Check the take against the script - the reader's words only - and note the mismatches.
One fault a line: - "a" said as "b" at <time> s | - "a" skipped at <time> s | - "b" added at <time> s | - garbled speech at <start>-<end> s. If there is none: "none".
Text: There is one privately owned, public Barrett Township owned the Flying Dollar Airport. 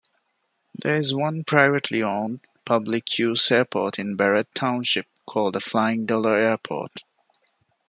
- "use airport in" added at 3.2 s
- "owned" said as "called" at 5.3 s